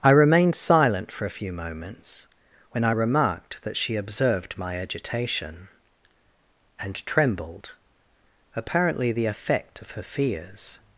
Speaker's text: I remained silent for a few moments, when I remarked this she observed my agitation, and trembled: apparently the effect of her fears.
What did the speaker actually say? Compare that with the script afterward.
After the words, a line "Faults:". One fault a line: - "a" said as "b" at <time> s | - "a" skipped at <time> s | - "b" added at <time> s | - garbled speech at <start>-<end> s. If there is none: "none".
I remained silent for a few moments, when I remarked that she observed my agitation, and trembled: apparently the effect of her fears.
Faults:
- "this" said as "that" at 3.6 s